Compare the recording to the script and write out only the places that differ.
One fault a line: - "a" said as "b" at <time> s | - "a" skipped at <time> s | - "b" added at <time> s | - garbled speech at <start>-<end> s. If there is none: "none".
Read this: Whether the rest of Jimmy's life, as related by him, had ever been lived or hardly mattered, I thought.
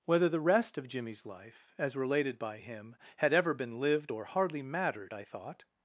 none